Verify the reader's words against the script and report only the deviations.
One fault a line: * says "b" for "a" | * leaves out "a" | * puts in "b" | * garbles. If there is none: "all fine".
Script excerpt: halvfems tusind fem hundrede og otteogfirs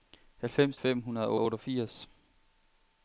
* leaves out "tusind"
* puts in "og"